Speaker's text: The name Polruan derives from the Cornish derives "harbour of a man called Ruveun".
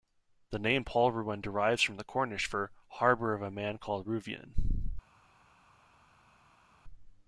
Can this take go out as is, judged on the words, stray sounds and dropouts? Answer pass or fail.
fail